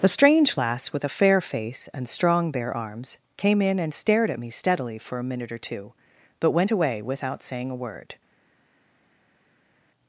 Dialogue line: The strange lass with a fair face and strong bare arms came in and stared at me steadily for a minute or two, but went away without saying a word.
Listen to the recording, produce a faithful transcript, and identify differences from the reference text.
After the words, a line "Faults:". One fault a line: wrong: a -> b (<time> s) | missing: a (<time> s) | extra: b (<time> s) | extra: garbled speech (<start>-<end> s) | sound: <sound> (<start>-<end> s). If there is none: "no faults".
The strange lass with a fair face and strong bare arms came in and stared at me steadily for a minute or two, but went away without saying a word.
Faults:
no faults